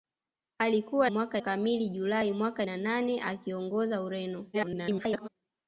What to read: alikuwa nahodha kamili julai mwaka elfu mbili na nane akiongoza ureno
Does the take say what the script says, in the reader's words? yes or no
no